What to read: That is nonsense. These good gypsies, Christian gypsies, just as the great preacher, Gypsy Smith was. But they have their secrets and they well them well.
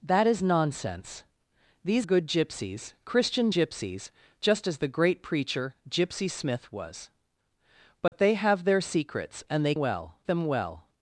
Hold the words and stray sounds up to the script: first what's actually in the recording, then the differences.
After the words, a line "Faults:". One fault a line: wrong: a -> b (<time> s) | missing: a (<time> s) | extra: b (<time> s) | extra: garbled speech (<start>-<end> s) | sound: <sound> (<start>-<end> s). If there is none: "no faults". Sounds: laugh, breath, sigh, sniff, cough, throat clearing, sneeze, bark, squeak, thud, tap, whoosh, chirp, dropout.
That is nonsense. These good gypsies, Christian gypsies, just as the great preacher, Gypsy Smith was. But they have their secrets and they well them well.
Faults:
sound: dropout (8.1-8.1 s)